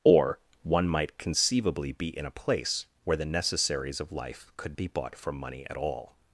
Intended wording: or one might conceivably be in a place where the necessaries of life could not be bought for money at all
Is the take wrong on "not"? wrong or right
wrong